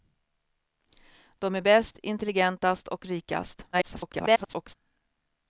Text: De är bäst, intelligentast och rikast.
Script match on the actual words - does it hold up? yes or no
no